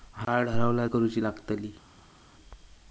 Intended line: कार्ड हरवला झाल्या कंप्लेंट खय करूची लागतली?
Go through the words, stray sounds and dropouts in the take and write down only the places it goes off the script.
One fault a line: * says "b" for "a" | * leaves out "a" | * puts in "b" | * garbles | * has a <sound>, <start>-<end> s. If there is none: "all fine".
* leaves out "झाल्या कंप्लेंट खय"